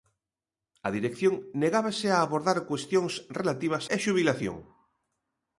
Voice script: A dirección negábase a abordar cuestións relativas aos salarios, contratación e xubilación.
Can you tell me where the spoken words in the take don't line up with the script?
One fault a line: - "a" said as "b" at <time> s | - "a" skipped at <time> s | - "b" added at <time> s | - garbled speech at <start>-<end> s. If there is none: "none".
- "aos salarios contratación" skipped at 3.9 s